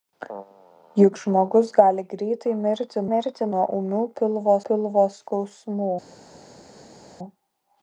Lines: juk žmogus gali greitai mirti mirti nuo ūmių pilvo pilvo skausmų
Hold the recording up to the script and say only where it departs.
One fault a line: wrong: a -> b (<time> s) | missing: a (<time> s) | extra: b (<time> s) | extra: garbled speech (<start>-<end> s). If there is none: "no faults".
no faults